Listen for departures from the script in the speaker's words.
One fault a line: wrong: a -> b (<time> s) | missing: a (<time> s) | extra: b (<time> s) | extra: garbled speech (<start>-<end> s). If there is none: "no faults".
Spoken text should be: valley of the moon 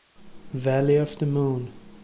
no faults